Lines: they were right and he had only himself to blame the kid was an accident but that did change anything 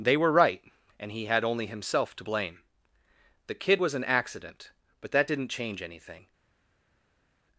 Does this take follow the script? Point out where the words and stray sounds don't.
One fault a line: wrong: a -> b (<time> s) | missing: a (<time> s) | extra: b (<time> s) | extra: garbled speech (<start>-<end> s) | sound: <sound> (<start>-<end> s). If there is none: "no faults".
wrong: did -> didn't (5.3 s)